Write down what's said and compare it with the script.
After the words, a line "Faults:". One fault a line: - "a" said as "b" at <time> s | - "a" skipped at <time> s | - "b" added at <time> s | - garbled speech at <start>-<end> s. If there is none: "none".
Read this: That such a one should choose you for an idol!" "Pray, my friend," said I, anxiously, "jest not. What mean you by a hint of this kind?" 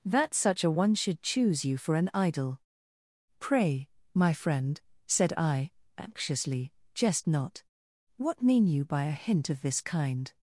That such a one should choose you for an idol!" "Pray, my friend," said I, anxiously, "jest not. What mean you by a hint of this kind?"
Faults:
none